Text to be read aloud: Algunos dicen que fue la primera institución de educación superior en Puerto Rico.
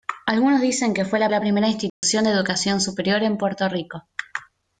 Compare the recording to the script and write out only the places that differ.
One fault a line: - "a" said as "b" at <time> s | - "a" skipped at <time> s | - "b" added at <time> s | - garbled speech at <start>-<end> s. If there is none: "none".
- "la" added at 1.3 s